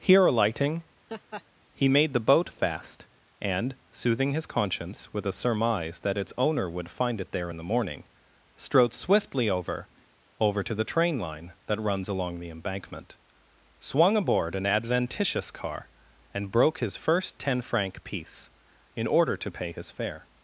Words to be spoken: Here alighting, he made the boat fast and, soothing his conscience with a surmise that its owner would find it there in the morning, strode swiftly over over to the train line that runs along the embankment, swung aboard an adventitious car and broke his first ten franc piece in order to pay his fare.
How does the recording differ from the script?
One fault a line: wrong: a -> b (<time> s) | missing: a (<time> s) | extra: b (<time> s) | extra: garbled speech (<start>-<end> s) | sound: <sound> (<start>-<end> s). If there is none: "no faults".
sound: laugh (1.1-1.4 s)